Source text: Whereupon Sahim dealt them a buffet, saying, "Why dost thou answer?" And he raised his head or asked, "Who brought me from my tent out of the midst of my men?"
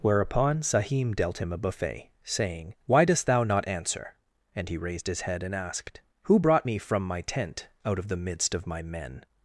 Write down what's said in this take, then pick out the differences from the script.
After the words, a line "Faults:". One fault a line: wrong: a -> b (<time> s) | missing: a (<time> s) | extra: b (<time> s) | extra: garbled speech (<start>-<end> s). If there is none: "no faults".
Whereupon Sahim dealt him a buffet, saying, "Why dost thou not answer?" And he raised his head and asked, "Who brought me from my tent out of the midst of my men?"
Faults:
wrong: them -> him (1.4 s)
extra: not (3.4 s)
wrong: or -> and (5.4 s)